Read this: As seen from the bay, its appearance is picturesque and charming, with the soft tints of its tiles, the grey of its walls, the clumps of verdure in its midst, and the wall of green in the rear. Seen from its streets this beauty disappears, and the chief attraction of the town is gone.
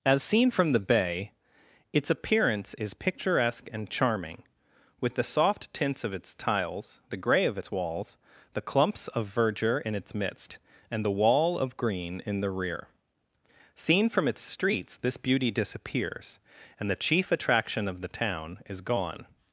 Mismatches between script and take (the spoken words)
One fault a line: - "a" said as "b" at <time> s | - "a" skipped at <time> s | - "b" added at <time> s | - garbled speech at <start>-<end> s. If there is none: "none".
none